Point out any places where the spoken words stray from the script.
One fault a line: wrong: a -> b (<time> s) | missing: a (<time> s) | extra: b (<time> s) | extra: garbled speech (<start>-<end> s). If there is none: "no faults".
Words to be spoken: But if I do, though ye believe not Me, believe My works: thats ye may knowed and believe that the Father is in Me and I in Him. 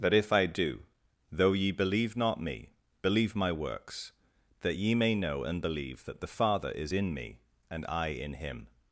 wrong: thats -> that (4.6 s)
wrong: knowed -> know (5.1 s)